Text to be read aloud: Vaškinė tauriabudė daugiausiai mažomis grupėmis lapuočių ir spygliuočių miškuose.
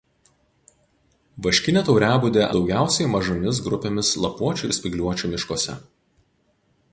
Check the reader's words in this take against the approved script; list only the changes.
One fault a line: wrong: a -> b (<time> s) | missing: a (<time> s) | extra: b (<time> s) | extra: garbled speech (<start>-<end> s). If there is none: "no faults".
no faults